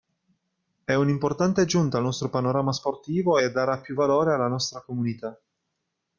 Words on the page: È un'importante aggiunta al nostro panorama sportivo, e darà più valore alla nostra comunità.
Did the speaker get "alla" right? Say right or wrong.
right